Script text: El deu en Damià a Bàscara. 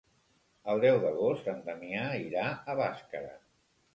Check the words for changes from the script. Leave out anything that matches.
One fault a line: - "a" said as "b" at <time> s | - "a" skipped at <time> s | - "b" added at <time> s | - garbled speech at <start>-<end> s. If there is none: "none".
- "d'agost" added at 1.0 s
- "irà" added at 2.2 s